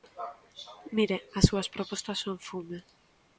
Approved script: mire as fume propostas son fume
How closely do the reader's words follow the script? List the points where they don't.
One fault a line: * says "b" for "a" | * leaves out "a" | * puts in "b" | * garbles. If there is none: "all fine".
* says "súas" for "fume"